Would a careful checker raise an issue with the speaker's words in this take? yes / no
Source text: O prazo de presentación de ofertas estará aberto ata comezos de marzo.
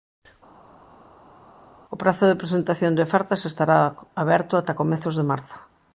no